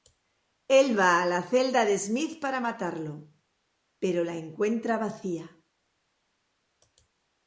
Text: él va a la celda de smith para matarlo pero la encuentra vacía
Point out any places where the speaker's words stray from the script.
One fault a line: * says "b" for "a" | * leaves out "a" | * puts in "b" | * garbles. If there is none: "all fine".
all fine